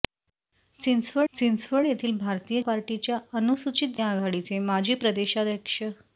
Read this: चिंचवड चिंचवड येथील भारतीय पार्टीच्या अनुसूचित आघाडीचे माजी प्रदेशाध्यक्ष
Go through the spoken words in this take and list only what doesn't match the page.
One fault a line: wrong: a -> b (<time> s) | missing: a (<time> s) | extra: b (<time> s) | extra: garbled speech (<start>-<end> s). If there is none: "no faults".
no faults